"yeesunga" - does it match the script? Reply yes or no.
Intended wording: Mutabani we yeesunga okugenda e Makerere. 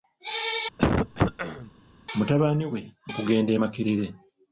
no